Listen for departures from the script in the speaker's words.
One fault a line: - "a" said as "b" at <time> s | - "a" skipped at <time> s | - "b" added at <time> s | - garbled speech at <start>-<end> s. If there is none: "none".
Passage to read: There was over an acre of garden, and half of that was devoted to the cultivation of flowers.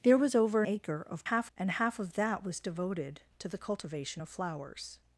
- "an" skipped at 0.6 s
- "garden" said as "half" at 1.2 s